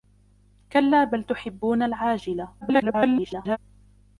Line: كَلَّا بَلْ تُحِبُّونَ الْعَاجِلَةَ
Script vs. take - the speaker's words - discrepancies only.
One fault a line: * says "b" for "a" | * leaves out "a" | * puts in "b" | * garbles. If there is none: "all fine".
* garbles